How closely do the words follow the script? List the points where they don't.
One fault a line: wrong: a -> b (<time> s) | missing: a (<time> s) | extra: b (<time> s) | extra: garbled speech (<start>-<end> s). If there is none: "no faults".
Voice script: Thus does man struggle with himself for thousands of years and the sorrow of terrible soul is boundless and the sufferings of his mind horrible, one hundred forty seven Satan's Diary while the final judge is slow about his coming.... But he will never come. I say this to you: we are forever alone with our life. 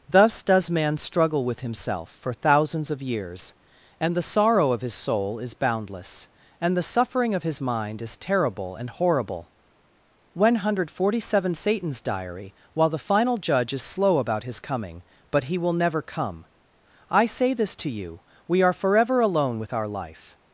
wrong: terrible -> his (4.8 s)
wrong: sufferings -> suffering (6.8 s)
extra: is terrible and (8.0 s)